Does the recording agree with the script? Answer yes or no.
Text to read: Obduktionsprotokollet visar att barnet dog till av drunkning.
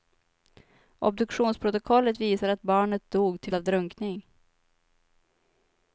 yes